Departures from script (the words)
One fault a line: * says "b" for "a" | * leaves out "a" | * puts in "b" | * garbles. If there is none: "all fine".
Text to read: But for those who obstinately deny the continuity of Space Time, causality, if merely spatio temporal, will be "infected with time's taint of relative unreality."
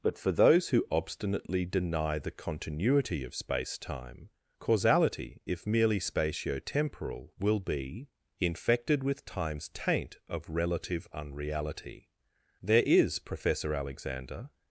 * puts in "There is Professor Alexander"